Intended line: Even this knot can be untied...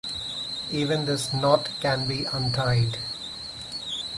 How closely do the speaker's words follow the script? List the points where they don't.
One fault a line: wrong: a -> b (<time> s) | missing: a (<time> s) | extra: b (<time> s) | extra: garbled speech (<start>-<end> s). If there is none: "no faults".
no faults